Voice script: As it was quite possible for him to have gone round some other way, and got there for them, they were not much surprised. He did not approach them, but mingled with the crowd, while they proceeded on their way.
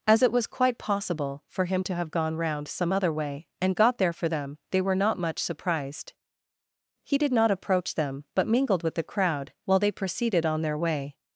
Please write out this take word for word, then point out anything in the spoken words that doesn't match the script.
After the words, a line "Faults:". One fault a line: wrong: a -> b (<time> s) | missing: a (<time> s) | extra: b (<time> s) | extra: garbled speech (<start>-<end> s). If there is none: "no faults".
As it was quite possible for him to have gone round some other way, and got there for them, they were not much surprised. He did not approach them, but mingled with the crowd, while they proceeded on their way.
Faults:
no faults